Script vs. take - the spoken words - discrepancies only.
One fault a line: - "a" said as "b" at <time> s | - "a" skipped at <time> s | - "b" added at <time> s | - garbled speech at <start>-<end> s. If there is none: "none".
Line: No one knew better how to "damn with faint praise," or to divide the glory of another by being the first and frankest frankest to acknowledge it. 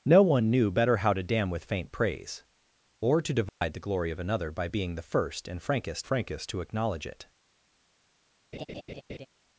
none